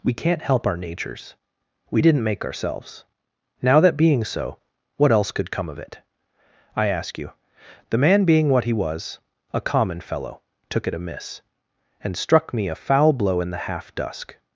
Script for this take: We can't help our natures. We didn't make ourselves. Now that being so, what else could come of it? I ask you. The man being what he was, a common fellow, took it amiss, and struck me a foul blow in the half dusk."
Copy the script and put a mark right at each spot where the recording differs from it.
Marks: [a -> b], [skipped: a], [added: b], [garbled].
We can't help our natures. We didn't make ourselves. Now that being so, what else could come of it? I ask you. The man being what he was, a common fellow, took it amiss, and struck me a foul blow in the half dusk."